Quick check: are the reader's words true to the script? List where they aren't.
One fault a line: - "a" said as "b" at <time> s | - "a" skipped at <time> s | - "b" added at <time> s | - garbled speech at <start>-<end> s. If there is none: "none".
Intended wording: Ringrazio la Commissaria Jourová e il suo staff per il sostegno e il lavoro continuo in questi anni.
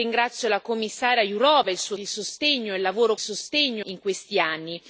- "staff per" skipped at 1.9 s
- "continuo" said as "sostegno" at 3.2 s